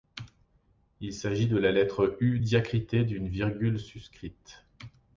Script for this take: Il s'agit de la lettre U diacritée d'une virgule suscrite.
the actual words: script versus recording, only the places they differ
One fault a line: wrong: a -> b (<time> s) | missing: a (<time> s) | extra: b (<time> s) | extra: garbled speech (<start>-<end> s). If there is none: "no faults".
no faults